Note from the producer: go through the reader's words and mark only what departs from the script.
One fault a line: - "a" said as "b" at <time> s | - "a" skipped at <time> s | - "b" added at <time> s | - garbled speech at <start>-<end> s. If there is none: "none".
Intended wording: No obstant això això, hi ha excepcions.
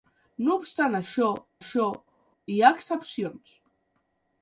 none